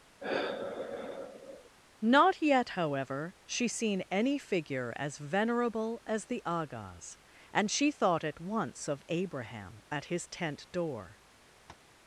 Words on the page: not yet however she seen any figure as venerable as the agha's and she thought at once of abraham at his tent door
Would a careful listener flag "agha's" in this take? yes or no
no